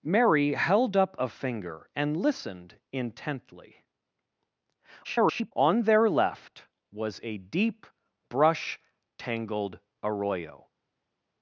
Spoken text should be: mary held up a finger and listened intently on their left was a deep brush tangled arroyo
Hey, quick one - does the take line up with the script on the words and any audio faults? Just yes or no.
no